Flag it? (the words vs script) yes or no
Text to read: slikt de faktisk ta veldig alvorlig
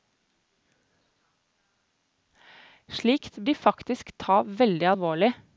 no